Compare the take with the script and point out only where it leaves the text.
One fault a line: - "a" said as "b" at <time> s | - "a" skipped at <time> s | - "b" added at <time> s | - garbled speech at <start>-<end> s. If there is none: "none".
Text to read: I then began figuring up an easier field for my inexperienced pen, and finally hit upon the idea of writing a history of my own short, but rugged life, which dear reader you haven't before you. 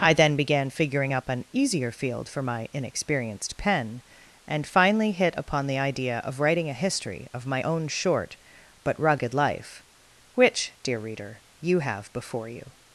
- "haven't" said as "have" at 11.8 s